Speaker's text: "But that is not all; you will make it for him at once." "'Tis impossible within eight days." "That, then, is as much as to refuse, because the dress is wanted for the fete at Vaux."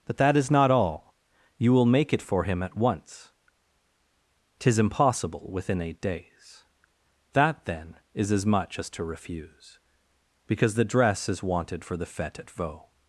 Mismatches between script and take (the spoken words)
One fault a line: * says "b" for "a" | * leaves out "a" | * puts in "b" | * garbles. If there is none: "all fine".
all fine